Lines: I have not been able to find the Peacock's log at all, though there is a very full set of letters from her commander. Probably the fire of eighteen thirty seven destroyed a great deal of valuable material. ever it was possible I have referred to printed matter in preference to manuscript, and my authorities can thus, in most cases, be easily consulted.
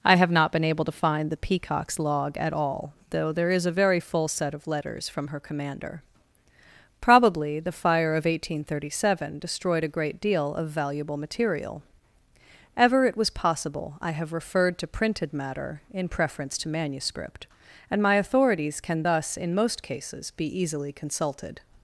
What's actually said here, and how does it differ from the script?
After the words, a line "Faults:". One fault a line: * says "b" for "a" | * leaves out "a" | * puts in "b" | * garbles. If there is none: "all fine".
I have not been able to find the Peacock's log at all, though there is a very full set of letters from her commander. Probably the fire of eighteen thirty seven destroyed a great deal of valuable material. ever it was possible I have referred to printed matter in preference to manuscript, and my authorities can thus, in most cases, be easily consulted.
Faults:
all fine